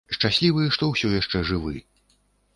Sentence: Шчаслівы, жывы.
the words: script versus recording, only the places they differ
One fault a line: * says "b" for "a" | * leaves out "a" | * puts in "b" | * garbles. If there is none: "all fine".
* puts in "што ўсё яшчэ"